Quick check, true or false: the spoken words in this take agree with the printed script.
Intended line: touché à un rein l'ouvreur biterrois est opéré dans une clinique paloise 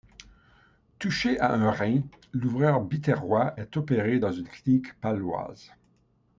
true